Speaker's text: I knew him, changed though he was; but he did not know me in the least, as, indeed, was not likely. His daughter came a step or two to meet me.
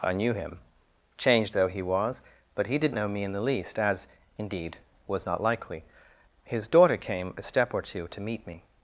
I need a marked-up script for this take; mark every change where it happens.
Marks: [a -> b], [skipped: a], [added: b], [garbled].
I knew him, changed though he was; but he did [skipped: not] know me in the least, as, indeed, was not likely. His daughter came a step or two to meet me.